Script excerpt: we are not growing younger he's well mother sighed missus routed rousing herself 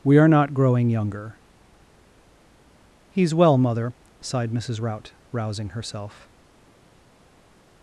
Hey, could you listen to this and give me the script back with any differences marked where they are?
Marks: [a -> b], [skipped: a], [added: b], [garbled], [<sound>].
we are not growing younger he's well mother sighed missus [routed -> rout] rousing herself